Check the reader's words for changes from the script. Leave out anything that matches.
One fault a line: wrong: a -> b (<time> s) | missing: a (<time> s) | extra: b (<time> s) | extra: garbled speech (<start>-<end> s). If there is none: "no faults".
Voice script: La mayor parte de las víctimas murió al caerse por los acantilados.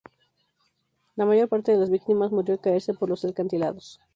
no faults